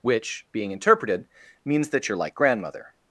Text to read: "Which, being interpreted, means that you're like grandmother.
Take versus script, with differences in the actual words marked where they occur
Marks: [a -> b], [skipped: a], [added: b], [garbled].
"Which, being interpreted, means that you're like grandmother.